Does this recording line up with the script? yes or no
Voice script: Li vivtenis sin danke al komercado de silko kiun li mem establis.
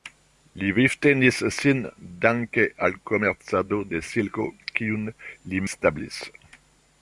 no